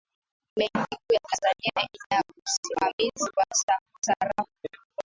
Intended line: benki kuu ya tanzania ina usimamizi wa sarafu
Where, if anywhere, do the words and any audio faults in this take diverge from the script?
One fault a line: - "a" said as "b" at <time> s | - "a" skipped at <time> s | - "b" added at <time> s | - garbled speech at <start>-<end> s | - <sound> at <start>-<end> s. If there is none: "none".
none